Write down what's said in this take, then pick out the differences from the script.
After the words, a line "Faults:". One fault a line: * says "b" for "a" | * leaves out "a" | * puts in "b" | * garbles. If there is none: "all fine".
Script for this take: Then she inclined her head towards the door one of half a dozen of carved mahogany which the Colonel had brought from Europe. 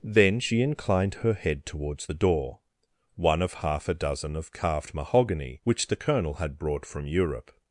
Then she inclined her head towards the door one of half a dozen of carved mahogany which the Colonel had brought from Europe.
Faults:
all fine